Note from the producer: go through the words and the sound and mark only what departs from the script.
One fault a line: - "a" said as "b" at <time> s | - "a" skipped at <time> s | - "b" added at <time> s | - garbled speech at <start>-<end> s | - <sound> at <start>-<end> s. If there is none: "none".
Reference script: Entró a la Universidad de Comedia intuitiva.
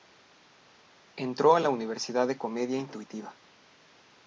none